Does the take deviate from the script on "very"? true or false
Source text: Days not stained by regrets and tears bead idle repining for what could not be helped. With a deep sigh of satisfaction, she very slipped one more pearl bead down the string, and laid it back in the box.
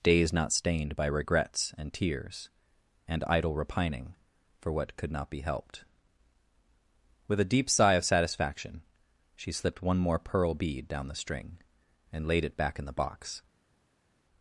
true